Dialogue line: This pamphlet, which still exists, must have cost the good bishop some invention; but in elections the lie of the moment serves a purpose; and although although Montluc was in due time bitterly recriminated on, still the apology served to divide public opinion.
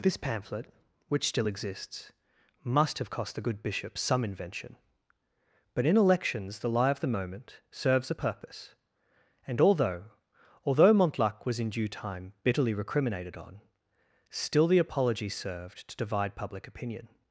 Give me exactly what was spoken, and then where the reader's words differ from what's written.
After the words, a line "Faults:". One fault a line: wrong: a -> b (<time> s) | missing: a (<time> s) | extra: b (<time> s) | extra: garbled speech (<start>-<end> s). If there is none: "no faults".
This pamphlet, which still exists, must have cost the good bishop some invention; but in elections the lie of the moment serves a purpose; and although although Montluc was in due time bitterly recriminated on, still the apology served to divide public opinion.
Faults:
no faults